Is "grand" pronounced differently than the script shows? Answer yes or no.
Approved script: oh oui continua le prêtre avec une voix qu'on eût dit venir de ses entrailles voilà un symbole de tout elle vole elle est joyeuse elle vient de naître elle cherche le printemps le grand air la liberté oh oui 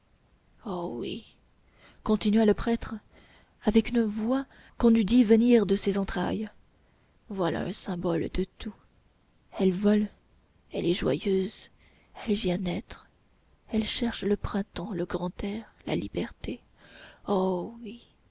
no